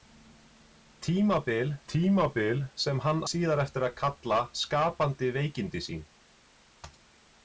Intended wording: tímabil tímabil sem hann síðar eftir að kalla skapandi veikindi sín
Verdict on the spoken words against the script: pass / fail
pass